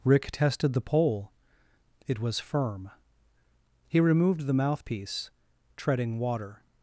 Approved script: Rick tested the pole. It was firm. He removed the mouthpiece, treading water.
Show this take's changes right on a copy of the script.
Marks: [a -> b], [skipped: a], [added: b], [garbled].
Rick tested the pole. It was firm. He removed the mouthpiece, treading water.